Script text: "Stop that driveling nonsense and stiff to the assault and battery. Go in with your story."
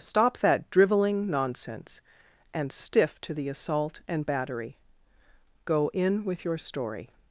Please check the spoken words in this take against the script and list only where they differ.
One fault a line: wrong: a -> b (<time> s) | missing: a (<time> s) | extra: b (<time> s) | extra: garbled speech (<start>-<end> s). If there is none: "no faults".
no faults